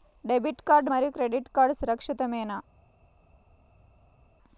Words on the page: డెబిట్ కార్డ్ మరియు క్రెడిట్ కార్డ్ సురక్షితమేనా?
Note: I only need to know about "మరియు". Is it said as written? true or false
true